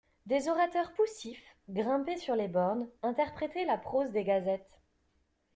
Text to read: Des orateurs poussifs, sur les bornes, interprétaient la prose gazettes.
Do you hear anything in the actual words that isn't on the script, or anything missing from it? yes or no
yes